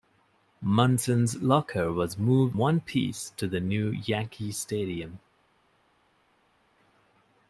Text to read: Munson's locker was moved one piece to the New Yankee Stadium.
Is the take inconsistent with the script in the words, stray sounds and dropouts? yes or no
no